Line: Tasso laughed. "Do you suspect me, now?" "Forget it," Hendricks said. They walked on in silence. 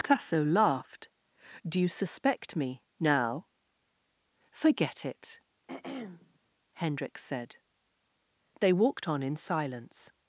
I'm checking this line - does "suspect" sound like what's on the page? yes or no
yes